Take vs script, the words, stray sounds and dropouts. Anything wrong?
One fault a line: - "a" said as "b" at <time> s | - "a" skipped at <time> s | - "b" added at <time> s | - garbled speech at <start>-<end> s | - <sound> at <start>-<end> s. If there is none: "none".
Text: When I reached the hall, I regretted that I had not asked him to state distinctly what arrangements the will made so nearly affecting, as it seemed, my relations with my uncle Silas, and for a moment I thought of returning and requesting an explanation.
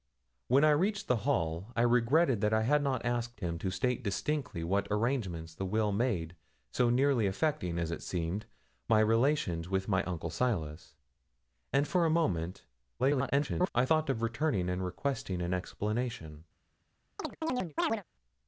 - garbled speech at 13.0-13.7 s
- chirp at 17.2-18.0 s